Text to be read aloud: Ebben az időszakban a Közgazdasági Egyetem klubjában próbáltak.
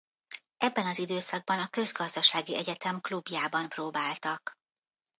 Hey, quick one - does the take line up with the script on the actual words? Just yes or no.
yes